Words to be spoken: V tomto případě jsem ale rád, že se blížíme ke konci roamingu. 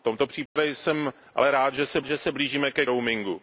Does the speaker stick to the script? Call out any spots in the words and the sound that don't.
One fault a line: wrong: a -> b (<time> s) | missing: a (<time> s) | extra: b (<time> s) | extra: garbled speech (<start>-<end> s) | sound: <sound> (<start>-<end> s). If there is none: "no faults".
sound: dropout (0.5-0.6 s)
extra: že se (2.0 s)
missing: konci (2.9 s)